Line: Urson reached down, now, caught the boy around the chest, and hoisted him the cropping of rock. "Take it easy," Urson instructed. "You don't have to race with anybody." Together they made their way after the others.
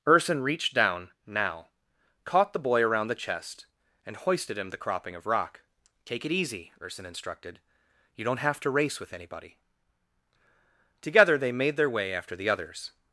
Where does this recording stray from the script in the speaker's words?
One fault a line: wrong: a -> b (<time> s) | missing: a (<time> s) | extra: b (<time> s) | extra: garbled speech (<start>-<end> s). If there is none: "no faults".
no faults